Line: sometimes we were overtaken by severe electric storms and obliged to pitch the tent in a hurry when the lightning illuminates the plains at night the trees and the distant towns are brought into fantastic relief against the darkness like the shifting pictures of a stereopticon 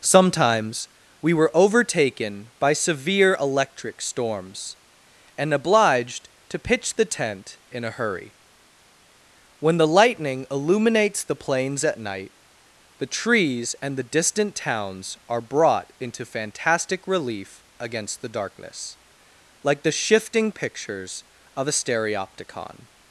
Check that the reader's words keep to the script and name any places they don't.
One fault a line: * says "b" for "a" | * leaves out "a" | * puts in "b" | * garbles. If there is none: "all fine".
all fine